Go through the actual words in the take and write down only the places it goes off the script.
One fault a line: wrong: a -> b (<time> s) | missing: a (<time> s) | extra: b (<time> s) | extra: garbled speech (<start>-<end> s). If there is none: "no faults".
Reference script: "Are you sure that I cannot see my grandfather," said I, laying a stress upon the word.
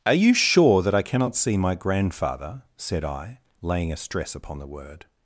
no faults